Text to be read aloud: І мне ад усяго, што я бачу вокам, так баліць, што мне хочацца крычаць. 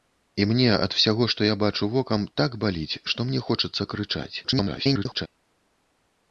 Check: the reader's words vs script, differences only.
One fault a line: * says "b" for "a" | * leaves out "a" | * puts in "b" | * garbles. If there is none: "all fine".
* garbles